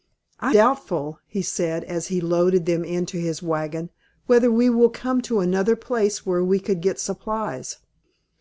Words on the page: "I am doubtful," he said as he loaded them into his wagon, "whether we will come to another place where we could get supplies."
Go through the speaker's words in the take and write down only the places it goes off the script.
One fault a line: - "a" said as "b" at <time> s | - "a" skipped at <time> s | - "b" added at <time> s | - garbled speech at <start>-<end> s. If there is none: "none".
- "am" skipped at 0.6 s